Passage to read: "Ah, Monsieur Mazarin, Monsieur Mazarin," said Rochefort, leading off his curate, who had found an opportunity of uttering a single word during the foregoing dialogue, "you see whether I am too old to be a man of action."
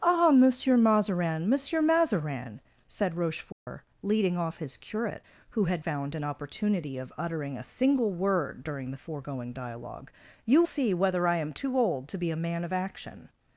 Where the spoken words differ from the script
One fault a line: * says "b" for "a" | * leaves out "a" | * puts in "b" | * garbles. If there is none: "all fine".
all fine